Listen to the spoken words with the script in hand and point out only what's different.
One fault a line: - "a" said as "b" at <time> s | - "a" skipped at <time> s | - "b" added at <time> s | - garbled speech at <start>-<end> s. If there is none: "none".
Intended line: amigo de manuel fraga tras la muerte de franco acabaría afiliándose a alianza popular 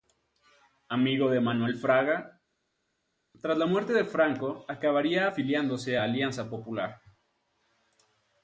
none